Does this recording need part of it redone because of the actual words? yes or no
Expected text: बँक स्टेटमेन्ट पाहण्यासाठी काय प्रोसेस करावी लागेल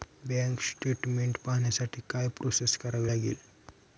no